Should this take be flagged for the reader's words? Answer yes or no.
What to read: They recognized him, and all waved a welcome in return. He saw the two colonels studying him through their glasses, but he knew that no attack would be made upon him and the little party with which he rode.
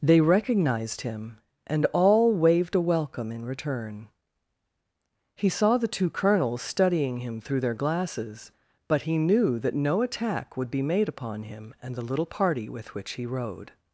no